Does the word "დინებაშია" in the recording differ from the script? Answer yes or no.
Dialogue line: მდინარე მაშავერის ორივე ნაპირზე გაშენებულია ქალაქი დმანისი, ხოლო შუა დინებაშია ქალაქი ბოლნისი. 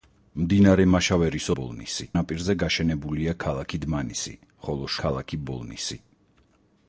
yes